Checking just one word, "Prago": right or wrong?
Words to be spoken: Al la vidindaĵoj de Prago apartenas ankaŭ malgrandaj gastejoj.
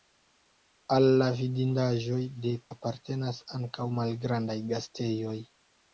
wrong